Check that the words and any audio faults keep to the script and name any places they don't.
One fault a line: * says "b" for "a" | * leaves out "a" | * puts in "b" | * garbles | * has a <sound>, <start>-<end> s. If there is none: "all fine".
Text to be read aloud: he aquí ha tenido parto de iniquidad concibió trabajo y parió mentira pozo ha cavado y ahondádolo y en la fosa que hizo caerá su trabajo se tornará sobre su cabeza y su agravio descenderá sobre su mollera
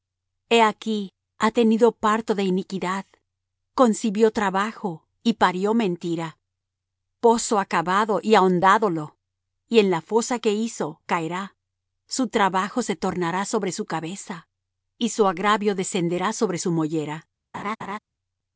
* has a laugh, 17.5-18.0 s